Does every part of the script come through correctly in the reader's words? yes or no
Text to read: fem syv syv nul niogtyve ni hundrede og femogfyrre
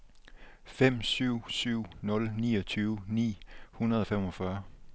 yes